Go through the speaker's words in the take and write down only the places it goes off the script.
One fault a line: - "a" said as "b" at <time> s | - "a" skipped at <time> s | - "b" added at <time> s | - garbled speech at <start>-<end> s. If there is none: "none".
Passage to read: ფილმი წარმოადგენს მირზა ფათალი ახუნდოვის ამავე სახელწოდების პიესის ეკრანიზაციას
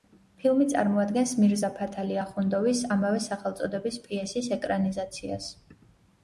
none